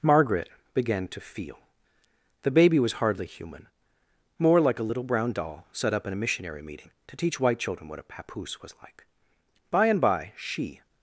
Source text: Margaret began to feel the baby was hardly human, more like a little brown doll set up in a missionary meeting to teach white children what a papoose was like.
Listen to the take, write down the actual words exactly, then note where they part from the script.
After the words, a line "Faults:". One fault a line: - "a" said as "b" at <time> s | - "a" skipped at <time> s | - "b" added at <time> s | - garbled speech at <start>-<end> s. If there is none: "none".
Margaret began to feel the baby was hardly human, more like a little brown doll set up in a missionary meeting to teach white children what a papoose was like. By and by she
Faults:
- "By and by she" added at 9.7 s